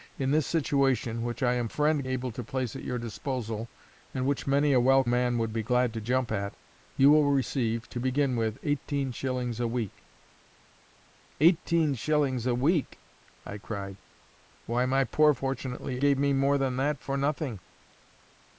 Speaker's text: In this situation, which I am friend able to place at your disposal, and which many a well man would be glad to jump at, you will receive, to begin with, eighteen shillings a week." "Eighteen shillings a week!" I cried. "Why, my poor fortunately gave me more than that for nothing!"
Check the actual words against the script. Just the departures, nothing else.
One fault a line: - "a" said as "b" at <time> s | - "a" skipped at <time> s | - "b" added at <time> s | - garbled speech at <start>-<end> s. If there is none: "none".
none